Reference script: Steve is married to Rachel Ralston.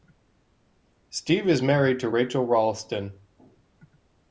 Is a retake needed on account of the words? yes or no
no